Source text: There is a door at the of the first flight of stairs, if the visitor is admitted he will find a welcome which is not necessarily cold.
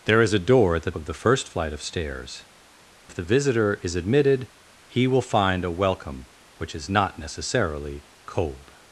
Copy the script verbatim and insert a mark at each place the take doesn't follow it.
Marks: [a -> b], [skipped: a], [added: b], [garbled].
There is a door at the of the first flight of stairs, if the visitor is admitted he will find a welcome which is not necessarily cold.